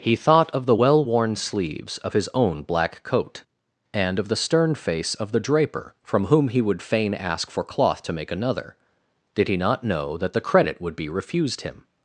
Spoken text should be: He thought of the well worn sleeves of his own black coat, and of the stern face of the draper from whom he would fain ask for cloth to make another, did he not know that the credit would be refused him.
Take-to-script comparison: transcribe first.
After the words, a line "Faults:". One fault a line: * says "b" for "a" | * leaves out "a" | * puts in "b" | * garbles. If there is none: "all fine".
He thought of the well worn sleeves of his own black coat, and of the stern face of the draper from whom he would fain ask for cloth to make another, did he not know that the credit would be refused him.
Faults:
all fine